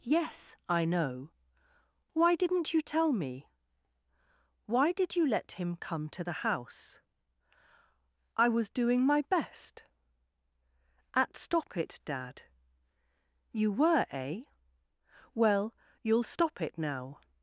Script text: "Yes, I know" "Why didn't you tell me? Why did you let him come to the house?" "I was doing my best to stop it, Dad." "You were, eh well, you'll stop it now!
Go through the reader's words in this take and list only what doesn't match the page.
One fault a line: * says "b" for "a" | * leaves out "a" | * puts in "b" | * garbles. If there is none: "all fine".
* says "at" for "to"